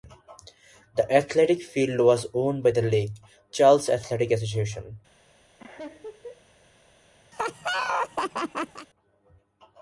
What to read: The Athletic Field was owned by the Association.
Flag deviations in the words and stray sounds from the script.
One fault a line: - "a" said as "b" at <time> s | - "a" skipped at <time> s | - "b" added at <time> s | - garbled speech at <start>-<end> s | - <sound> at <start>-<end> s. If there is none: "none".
- "Lake Charles Athletic" added at 2.8 s
- laugh at 5.6-6.4 s
- laugh at 7.3-8.9 s